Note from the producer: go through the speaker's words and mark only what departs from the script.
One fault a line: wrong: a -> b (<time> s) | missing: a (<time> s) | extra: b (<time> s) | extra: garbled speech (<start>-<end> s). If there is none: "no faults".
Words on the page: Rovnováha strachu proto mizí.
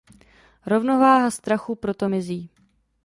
no faults